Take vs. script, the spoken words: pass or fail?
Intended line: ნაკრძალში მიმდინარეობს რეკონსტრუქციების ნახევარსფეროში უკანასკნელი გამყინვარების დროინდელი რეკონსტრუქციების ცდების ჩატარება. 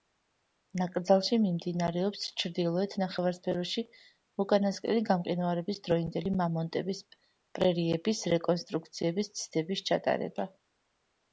fail